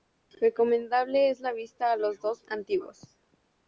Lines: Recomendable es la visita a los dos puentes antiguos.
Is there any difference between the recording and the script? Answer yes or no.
yes